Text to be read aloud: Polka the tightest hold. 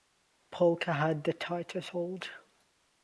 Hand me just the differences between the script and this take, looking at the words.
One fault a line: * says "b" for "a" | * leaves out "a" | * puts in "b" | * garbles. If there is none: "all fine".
* puts in "had"